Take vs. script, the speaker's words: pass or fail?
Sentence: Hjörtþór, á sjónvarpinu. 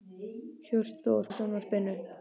pass